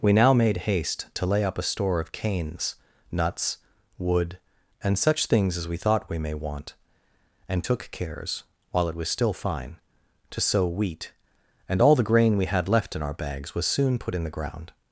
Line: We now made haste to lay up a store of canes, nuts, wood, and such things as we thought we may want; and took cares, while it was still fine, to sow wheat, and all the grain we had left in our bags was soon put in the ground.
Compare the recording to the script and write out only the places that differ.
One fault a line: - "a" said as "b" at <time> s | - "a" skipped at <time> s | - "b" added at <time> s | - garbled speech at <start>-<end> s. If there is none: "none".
none